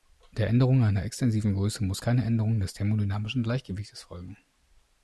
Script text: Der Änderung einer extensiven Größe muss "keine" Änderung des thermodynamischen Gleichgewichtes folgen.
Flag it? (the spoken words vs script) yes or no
no